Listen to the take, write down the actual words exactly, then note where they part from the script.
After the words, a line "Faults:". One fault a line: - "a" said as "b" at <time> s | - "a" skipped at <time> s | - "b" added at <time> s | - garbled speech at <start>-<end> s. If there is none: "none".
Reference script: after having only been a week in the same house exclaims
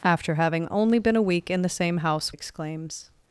after having only been a week in the same house exclaims
Faults:
none